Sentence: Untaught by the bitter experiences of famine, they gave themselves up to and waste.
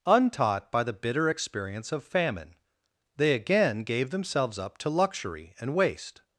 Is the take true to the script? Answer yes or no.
no